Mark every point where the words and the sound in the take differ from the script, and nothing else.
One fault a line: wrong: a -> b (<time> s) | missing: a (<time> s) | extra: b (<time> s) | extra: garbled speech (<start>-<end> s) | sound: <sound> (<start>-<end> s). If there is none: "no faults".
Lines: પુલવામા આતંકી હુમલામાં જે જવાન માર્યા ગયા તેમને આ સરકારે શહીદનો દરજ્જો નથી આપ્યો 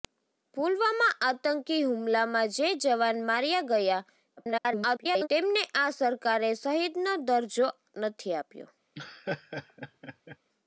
extra: garbled speech (4.4-5.3 s)
sound: laugh (8.9-10.4 s)